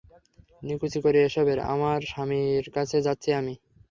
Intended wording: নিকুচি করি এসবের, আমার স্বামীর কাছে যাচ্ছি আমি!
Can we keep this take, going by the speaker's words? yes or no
yes